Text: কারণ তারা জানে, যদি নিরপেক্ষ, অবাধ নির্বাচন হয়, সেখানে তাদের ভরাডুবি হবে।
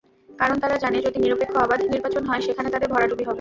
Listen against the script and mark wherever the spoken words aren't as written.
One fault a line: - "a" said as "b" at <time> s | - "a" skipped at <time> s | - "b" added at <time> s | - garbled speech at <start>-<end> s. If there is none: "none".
none